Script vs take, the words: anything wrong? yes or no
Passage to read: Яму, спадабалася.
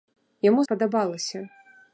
no